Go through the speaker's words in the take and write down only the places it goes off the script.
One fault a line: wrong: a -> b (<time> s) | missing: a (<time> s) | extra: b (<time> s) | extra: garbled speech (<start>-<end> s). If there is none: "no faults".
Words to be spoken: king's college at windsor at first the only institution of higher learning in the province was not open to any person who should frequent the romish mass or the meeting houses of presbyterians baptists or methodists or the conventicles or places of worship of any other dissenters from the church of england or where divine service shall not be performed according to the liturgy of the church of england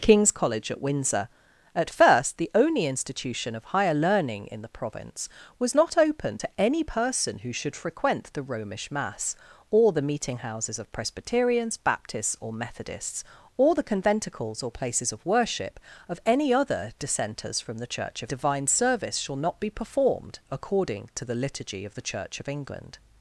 missing: england or where (18.3 s)